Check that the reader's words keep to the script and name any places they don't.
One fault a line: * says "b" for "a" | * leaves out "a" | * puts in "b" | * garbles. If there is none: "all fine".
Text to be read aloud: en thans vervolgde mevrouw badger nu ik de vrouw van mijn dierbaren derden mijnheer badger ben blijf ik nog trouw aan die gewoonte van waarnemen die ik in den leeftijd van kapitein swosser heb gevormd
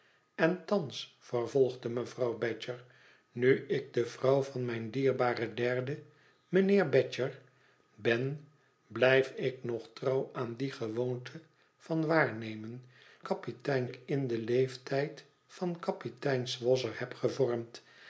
* says "kapitein" for "die"